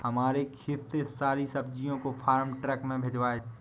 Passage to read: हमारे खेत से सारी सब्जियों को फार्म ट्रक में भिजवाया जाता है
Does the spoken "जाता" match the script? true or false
false